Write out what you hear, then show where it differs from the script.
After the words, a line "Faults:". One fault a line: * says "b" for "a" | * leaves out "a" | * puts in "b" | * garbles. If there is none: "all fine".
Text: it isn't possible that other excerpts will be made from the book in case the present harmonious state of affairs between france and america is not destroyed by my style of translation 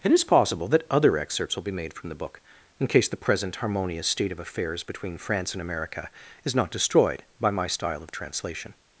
it is possible that other excerpts will be made from the book in case the present harmonious state of affairs between france and america is not destroyed by my style of translation
Faults:
* says "is" for "isn't"